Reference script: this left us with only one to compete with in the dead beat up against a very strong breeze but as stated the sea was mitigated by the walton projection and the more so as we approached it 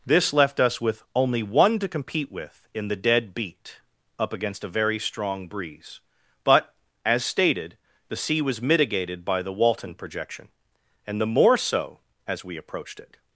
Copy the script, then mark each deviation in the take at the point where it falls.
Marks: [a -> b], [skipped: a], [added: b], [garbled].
this left us with only one to compete with in the dead beat up against a very strong breeze but as stated the sea was mitigated by the walton projection and the more so as we approached it